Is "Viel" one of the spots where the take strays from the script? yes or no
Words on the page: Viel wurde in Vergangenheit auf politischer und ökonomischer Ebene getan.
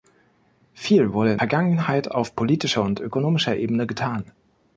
no